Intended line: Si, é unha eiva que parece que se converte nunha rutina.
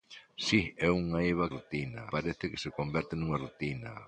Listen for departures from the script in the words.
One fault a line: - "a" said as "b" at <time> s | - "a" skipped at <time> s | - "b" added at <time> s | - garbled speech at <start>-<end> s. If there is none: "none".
- "que" said as "rutina" at 1.6 s